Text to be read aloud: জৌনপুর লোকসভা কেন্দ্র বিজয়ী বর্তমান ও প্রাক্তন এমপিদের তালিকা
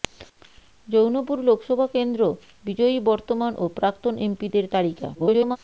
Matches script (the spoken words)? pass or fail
fail